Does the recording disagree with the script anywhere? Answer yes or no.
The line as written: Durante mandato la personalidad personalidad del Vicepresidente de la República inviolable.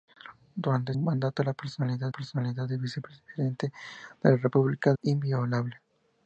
no